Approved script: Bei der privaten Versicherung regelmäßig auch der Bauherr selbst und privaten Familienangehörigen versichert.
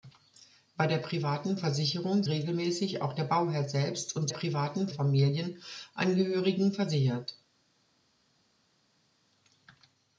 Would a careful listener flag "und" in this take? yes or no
no